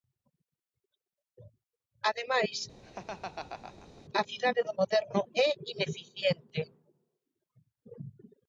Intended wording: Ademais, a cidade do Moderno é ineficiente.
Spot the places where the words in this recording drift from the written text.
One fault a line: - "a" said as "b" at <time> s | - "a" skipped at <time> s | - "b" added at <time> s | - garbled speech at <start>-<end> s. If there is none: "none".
none